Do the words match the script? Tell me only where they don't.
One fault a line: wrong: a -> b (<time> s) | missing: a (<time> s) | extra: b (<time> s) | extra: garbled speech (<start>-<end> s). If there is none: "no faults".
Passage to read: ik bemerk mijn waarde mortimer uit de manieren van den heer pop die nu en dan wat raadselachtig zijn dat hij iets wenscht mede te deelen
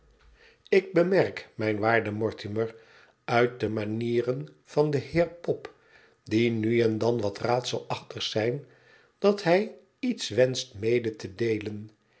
no faults